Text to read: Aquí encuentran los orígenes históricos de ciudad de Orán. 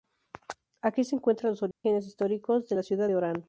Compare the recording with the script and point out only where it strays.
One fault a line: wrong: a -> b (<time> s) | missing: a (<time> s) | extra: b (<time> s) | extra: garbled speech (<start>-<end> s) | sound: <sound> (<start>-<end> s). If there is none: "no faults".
extra: se (1.0 s)
sound: dropout (1.7-1.8 s)
extra: la (2.7 s)